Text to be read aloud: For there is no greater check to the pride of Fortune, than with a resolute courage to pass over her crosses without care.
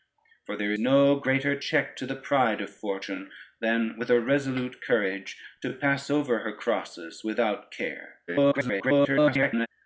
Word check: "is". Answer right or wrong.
wrong